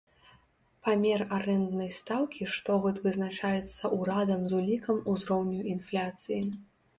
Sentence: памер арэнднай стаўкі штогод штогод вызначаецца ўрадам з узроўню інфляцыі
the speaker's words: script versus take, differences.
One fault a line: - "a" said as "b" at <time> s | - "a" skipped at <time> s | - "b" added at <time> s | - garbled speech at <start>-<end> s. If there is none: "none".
- "штогод" skipped at 3.0 s
- "улікам" added at 4.6 s